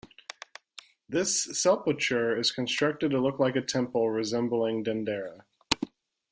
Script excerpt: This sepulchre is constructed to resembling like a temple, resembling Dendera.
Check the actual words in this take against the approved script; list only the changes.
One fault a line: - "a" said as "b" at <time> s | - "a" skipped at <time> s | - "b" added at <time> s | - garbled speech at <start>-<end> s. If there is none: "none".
- "resembling" said as "look" at 3.2 s